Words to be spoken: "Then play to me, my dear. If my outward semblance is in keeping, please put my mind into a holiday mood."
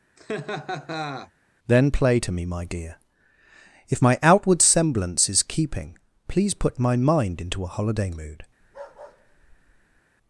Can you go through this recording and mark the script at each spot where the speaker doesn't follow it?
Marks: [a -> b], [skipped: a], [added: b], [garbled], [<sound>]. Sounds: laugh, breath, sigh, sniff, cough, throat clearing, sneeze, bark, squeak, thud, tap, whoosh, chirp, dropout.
[laugh] "Then play to me, my dear. If my outward semblance is [skipped: in] keeping, please put my mind into a holiday mood." [bark]